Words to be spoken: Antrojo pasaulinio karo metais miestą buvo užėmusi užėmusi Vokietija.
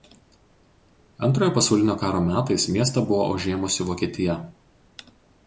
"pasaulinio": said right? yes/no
yes